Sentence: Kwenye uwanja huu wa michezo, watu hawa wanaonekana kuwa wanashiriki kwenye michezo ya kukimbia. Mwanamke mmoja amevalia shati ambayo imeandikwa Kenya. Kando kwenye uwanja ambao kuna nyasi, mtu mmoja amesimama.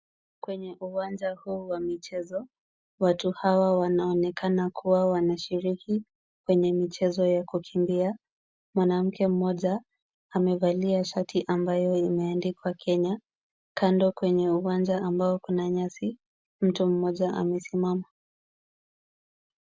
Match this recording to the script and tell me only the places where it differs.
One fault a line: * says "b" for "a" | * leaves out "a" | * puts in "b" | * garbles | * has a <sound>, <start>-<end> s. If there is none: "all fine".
all fine